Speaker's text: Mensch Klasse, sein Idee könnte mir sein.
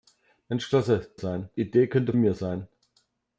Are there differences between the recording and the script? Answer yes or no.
no